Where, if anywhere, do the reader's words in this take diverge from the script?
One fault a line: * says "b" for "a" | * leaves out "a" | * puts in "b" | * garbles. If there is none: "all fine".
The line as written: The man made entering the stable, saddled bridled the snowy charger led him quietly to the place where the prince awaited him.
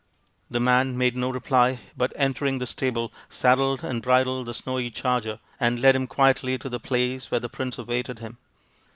* puts in "no reply but"
* puts in "and"
* puts in "and"